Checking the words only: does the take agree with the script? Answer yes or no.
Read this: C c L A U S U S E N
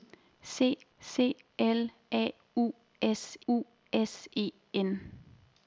yes